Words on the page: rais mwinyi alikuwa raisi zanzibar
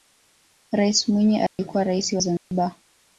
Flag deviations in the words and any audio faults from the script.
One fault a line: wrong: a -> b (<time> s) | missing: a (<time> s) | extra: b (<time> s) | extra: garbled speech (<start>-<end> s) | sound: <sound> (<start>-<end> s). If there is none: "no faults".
sound: dropout (1.5-1.6 s)
sound: dropout (2.4-2.5 s)